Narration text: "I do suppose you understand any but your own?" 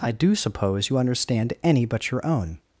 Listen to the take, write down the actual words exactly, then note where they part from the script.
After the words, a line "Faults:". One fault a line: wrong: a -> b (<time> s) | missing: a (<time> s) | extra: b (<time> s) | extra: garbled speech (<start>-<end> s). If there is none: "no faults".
"I do suppose you understand any but your own?"
Faults:
no faults